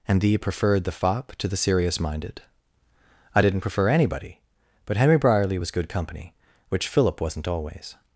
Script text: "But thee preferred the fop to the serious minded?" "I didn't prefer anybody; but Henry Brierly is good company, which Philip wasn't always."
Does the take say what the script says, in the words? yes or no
no